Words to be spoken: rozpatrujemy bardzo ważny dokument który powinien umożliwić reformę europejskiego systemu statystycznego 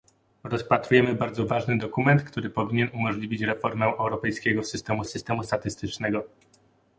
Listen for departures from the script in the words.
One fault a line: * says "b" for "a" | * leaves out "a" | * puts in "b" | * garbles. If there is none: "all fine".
* puts in "systemu"